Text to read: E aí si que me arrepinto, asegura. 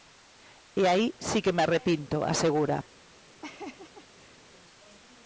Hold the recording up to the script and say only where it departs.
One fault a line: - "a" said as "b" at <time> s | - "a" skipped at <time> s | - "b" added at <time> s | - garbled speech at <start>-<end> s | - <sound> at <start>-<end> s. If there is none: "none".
- laugh at 3.4-4.5 s